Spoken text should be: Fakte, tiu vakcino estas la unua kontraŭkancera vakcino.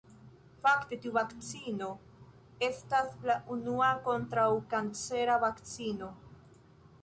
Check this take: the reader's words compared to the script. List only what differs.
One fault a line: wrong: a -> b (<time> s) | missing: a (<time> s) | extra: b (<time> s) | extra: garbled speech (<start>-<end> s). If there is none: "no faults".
no faults